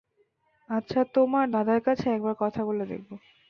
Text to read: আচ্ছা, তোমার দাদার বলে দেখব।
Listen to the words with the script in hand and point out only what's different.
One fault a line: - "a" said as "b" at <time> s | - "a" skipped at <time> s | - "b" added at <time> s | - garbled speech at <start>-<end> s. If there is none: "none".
- "কাছে একবার কথা" added at 1.9 s